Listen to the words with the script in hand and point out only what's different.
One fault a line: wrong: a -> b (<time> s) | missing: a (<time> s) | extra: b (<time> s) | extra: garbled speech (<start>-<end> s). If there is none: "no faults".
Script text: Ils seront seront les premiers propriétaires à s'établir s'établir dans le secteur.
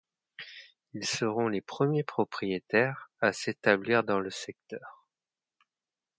missing: seront (1.5 s)
missing: s'établir (4.0 s)